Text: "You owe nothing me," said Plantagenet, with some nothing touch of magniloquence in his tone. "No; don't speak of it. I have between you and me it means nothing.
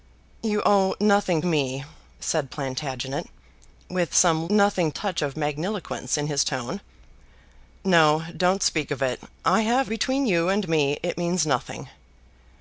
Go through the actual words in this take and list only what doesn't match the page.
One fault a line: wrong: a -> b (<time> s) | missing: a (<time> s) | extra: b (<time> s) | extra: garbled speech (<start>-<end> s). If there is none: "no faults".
no faults